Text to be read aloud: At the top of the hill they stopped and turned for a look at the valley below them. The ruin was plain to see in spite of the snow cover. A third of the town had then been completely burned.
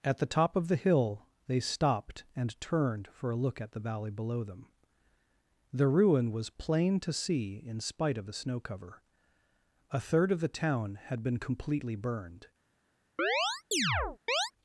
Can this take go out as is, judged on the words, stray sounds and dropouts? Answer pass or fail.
fail